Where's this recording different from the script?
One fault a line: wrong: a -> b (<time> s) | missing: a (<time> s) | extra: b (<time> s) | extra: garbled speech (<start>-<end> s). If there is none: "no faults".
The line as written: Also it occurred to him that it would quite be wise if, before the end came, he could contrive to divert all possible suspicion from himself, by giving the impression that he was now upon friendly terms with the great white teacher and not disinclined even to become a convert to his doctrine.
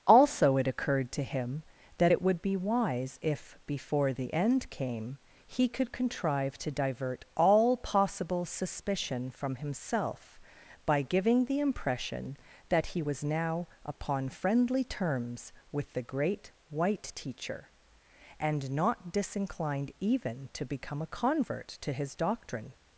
missing: quite (2.4 s)